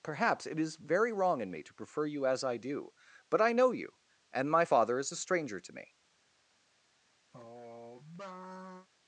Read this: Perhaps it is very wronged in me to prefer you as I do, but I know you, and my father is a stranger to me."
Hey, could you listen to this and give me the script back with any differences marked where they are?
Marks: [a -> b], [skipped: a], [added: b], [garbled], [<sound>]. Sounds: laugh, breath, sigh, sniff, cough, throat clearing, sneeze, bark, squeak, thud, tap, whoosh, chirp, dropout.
Perhaps it is very [wronged -> wrong] in me to prefer you as I do, but I know you, and my father is a stranger to me." [sigh]